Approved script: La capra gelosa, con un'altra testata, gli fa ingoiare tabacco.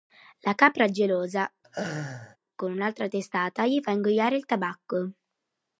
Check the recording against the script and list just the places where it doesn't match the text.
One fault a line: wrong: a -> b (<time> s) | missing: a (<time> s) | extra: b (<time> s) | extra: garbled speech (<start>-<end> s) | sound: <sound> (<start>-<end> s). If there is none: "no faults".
sound: laugh (1.6-2.4 s)
extra: il (4.4 s)